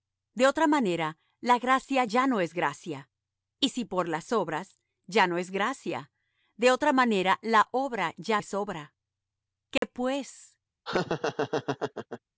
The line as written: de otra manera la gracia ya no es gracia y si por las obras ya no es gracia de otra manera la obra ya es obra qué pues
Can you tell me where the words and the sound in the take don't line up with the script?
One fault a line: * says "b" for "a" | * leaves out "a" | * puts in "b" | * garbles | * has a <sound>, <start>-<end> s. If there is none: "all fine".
* has a dropout, 9.8-9.8 s
* has a laugh, 10.9-12.2 s